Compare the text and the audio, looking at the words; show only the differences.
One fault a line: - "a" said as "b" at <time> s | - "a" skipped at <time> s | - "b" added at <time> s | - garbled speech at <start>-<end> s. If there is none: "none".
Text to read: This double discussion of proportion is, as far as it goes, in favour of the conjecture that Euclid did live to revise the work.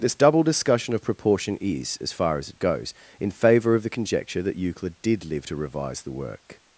none